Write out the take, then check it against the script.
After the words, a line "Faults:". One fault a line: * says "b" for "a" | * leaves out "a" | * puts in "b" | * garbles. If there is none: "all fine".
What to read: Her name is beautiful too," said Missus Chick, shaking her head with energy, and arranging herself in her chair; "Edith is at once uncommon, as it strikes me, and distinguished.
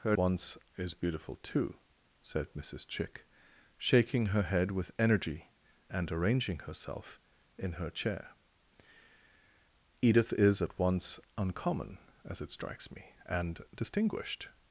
Her once is beautiful too," said Missus Chick, shaking her head with energy, and arranging herself in her chair; "Edith is at once uncommon, as it strikes me, and distinguished.
Faults:
* says "once" for "name"